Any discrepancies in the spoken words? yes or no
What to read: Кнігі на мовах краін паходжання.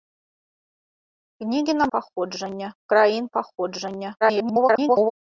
yes